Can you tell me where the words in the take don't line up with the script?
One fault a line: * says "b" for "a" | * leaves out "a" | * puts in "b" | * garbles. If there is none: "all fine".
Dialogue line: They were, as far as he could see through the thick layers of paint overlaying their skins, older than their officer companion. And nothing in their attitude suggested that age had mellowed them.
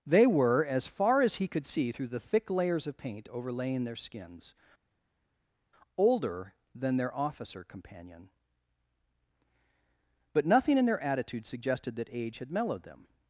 * says "But" for "And"